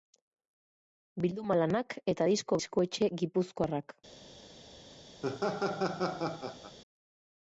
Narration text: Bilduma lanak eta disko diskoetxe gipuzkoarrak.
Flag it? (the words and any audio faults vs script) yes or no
yes